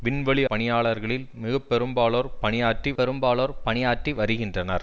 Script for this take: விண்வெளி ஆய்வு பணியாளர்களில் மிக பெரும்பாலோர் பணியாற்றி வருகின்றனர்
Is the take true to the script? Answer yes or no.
no